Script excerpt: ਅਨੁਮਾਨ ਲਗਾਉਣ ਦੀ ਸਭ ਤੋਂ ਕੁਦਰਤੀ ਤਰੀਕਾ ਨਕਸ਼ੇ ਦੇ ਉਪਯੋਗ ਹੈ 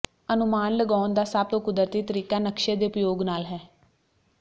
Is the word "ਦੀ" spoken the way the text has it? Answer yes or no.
no